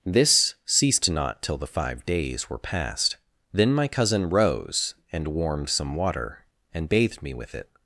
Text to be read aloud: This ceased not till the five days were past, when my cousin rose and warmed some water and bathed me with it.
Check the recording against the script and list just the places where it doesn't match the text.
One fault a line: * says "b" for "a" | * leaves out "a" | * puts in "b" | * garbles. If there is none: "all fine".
* says "then" for "when"